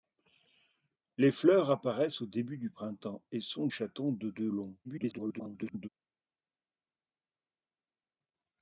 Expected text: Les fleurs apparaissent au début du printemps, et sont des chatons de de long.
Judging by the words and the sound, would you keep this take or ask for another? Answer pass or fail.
fail